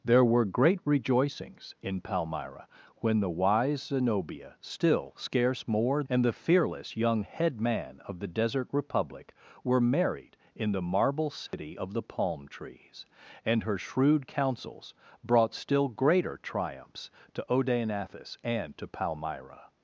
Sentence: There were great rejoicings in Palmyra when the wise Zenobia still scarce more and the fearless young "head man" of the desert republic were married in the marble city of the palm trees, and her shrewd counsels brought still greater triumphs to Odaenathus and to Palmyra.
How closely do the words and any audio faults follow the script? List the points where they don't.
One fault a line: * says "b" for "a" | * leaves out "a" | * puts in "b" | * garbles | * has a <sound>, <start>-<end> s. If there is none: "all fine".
* has a dropout, 11.5-11.5 s